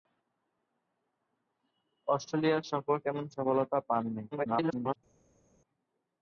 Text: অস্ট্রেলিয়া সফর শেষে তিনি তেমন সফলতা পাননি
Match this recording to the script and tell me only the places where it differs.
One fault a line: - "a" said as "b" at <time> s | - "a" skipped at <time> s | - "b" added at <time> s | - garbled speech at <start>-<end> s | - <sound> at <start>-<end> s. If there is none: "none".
- "শেষে তিনি" skipped at 3.0 s
- garbled speech at 4.3-5.0 s